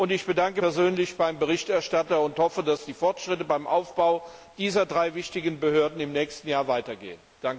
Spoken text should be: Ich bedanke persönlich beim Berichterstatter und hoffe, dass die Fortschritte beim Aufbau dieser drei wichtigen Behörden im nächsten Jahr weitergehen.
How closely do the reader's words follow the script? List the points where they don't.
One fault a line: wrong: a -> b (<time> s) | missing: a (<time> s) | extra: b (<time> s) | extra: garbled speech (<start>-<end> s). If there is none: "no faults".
no faults